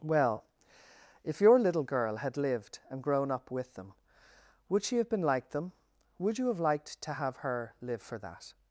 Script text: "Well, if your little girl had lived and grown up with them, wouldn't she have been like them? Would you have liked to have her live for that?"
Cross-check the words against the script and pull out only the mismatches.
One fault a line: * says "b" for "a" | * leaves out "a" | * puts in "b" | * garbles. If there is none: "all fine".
* says "would" for "wouldn't"